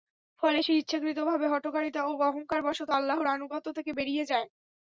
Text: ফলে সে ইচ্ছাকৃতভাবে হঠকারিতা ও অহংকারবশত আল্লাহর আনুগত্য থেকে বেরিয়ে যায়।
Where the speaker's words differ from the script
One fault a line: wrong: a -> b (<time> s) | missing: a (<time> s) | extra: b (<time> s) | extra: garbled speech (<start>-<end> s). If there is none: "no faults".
no faults